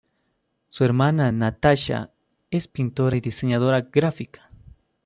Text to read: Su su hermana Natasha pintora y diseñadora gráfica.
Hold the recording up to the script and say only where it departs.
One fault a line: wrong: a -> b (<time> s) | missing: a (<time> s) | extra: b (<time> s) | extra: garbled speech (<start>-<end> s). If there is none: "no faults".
missing: su (0.8 s)
extra: es (2.5 s)